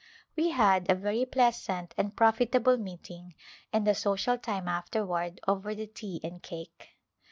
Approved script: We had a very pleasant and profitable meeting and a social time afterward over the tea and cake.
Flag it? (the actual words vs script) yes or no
no